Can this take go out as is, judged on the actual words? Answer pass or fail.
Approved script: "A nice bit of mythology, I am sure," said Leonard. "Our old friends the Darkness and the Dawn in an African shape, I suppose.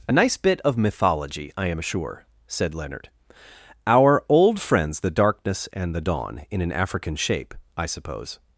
pass